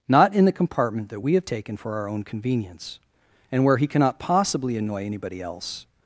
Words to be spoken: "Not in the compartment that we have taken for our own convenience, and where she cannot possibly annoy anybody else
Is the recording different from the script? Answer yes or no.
yes